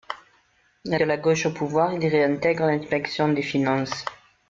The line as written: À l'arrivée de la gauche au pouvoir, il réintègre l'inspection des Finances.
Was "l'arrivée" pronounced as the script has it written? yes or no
no